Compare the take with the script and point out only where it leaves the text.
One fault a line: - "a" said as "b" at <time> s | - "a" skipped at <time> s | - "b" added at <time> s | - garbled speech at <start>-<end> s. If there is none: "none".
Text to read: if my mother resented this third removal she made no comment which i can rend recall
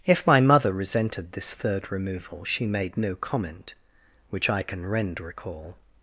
none